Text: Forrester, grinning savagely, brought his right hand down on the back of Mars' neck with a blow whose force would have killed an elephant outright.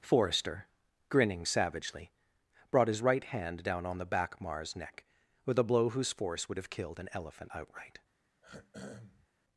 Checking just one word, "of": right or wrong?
wrong